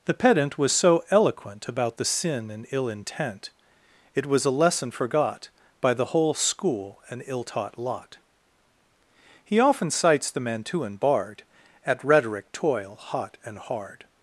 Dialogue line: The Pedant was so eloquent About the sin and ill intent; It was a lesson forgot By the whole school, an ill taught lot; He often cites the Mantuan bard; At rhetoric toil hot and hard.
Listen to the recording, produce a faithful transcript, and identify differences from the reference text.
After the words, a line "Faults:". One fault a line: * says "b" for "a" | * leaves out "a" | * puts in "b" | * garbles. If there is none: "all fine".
The Pedant was so eloquent About the sin and ill intent; It was a lesson forgot By the whole school, an ill taught lot; He often cites the Mantuan bard; At rhetoric toil hot and hard.
Faults:
all fine